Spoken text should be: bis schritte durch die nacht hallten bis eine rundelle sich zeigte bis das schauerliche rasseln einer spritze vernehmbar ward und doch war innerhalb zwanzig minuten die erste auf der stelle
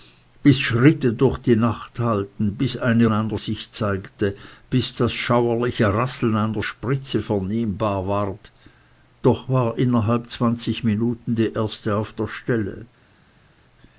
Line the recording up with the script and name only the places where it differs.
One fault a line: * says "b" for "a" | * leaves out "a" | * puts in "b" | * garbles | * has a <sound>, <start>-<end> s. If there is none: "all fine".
* says "einer" for "rundelle"
* leaves out "und"